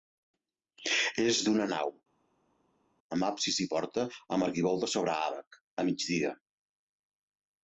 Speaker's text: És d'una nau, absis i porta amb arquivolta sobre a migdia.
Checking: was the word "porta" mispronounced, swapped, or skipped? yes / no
no